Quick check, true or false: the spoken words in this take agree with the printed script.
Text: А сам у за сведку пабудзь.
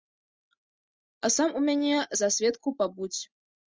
false